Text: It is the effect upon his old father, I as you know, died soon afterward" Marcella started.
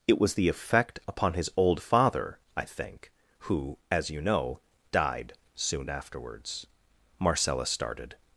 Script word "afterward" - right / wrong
wrong